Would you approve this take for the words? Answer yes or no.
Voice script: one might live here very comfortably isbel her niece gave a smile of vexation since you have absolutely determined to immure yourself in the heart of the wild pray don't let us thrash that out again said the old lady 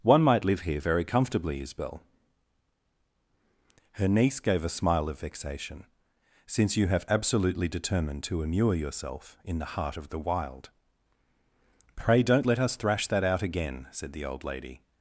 yes